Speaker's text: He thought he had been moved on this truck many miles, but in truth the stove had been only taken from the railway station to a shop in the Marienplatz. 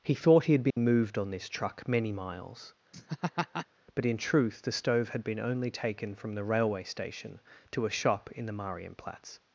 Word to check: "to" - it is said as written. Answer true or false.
true